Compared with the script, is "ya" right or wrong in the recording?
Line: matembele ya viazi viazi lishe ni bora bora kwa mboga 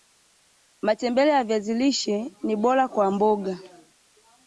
right